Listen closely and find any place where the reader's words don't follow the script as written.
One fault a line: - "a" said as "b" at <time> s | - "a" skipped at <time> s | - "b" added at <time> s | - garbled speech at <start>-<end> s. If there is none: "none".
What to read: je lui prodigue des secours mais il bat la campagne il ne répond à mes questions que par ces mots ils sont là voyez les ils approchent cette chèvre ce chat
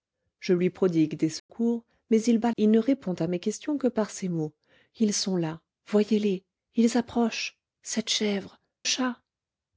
- "la campagne" skipped at 2.5 s
- "ce" skipped at 8.6 s